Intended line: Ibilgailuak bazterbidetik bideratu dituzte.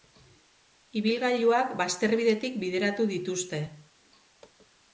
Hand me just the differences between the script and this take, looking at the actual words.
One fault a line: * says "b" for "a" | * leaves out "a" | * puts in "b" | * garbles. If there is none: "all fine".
all fine